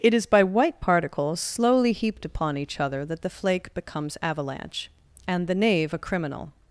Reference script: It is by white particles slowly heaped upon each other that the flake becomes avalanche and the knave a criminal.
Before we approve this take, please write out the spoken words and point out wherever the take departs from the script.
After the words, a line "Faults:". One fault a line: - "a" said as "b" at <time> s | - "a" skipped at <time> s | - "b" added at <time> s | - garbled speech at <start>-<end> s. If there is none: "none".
It is by white particles slowly heaped upon each other that the flake becomes avalanche and the knave a criminal.
Faults:
none